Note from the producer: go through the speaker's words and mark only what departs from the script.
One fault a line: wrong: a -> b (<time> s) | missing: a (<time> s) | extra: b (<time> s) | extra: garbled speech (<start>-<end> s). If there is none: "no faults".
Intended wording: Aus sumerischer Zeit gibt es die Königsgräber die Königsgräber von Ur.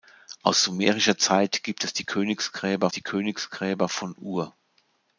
no faults